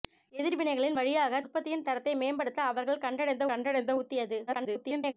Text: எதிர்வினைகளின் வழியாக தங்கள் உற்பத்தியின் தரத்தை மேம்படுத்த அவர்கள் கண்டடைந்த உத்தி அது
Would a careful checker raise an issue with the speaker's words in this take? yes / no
yes